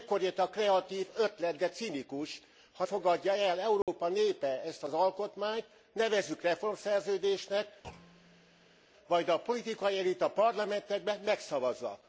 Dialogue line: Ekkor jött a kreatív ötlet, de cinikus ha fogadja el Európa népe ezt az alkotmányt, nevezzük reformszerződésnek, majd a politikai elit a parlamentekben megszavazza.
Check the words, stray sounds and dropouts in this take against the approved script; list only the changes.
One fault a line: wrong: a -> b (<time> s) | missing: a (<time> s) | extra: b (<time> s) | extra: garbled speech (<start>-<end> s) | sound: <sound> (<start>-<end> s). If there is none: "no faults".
sound: dropout (3.8-3.9 s)
sound: thud (7.8-8.8 s)